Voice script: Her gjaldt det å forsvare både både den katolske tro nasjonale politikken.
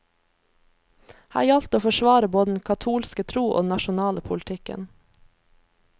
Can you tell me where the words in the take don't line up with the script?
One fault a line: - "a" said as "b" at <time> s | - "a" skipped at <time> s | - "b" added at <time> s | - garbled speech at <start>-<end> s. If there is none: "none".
- "både" skipped at 2.5 s
- "og den" added at 3.5 s